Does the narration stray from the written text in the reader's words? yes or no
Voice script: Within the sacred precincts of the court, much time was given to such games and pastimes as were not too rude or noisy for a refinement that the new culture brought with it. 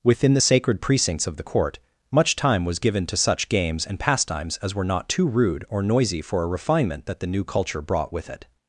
no